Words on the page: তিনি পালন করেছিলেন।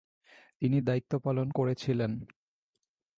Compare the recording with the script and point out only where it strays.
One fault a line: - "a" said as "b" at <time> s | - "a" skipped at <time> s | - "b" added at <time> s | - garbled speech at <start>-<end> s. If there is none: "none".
- "দায়িত্ব" added at 0.8 s